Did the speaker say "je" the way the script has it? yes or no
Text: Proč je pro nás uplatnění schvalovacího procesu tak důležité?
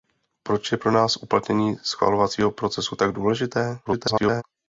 yes